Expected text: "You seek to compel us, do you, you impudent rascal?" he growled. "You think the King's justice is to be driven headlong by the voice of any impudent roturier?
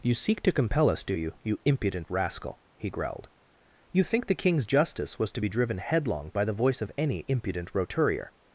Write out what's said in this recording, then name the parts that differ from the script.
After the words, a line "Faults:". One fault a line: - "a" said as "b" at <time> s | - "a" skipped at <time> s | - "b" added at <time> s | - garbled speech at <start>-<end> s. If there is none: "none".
"You seek to compel us, do you, you impudent rascal?" he growled. "You think the King's justice was to be driven headlong by the voice of any impudent roturier?
Faults:
- "is" said as "was" at 5.2 s